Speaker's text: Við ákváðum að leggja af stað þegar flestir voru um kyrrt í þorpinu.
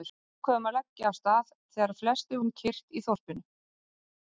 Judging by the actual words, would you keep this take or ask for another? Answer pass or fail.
fail